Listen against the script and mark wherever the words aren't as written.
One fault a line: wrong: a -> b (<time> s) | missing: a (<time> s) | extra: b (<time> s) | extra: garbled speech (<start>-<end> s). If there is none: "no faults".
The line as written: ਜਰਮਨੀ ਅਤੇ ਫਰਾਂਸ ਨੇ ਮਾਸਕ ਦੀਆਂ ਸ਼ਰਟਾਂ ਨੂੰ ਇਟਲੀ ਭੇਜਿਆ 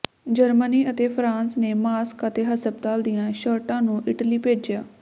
extra: ਅਤੇ ਹਸਪਤਾਲ (2.3 s)